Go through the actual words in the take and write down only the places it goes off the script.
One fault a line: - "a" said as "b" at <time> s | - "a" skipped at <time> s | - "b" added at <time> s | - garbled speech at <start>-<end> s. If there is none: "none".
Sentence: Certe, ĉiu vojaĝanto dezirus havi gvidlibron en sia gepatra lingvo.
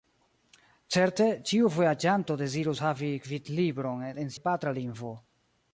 - "sia" skipped at 4.3 s